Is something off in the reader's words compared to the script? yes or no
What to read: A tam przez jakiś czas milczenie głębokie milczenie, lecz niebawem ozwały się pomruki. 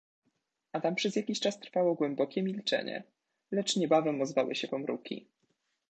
yes